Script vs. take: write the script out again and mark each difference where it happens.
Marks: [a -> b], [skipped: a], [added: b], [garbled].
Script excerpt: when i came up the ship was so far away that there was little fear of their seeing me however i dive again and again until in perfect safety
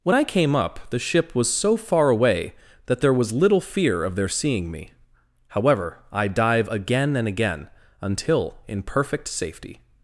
when i came up the ship was so far away that there was little fear of their seeing me however i dive again and again until in perfect safety